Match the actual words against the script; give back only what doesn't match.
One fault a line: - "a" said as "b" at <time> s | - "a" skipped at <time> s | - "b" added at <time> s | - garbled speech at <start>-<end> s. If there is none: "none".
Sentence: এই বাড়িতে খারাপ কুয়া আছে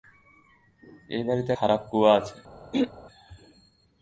none